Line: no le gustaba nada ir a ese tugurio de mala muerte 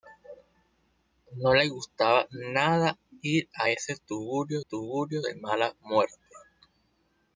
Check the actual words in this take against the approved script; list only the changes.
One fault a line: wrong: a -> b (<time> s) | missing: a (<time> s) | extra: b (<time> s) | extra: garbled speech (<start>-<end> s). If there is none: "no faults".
extra: tugurio (4.6 s)